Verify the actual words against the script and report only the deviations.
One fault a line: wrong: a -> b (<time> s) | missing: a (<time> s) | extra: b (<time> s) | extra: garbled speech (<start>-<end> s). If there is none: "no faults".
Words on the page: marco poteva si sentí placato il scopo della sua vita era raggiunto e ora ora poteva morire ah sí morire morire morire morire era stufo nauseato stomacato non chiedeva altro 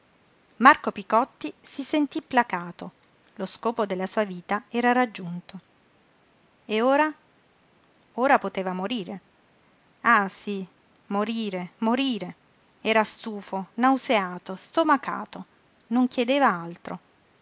wrong: poteva -> picotti (0.9 s)
wrong: il -> lo (3.4 s)
missing: morire morire (12.3 s)